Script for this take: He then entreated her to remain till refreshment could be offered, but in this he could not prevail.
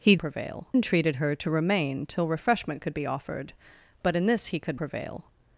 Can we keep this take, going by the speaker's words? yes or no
no